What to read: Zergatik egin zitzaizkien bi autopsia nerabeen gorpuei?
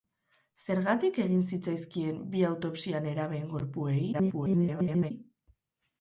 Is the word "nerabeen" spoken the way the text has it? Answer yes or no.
yes